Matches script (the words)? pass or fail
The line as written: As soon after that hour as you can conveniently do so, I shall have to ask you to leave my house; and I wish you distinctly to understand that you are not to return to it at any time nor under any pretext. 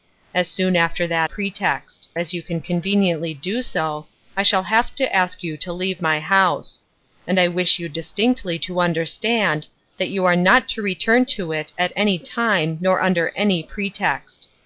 fail